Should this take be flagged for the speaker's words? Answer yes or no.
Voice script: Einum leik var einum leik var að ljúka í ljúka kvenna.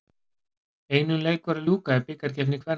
yes